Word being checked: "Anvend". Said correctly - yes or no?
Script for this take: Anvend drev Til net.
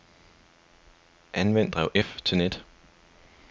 yes